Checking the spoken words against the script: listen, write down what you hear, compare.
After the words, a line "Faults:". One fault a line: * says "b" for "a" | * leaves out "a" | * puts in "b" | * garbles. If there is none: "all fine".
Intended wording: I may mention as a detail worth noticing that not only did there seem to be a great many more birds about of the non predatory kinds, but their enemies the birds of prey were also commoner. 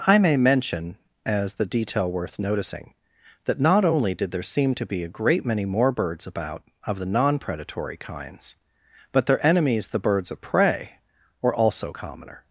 I may mention as the detail worth noticing that not only did there seem to be a great many more birds about of the non predatory kinds, but their enemies the birds of prey were also commoner.
Faults:
* says "the" for "a"